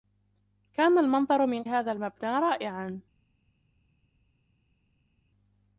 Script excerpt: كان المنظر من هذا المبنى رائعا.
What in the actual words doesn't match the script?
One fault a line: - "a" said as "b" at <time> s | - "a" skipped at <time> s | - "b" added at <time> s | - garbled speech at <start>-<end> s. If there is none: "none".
none